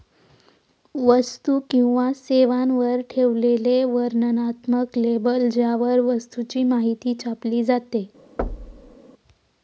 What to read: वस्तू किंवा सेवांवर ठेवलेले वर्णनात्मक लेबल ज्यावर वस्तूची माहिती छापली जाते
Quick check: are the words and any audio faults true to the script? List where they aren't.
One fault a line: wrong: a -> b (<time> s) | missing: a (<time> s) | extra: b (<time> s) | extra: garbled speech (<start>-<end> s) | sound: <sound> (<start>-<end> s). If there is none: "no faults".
sound: thud (8.4-9.0 s)